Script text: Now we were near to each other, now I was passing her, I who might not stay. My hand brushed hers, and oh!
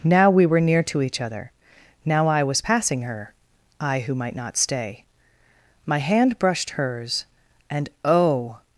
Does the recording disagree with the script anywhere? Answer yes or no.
no